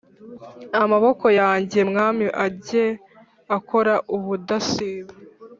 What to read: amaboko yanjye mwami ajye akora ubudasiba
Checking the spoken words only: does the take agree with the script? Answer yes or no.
yes